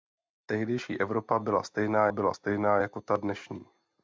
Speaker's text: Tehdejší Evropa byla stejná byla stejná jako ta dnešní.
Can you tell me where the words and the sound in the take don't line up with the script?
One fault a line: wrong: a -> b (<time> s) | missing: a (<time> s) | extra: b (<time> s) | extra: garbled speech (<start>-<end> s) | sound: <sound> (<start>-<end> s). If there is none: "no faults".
no faults